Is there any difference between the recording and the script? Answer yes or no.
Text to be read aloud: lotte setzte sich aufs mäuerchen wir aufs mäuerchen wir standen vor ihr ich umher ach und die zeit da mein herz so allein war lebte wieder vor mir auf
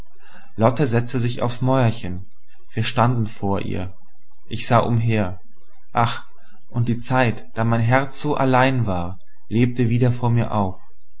yes